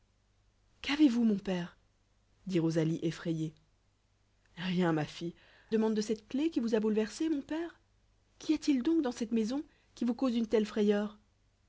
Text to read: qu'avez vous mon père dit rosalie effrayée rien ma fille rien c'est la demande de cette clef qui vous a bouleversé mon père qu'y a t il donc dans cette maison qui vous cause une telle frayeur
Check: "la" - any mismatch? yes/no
yes